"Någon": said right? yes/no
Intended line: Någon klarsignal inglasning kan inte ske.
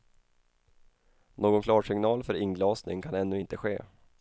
yes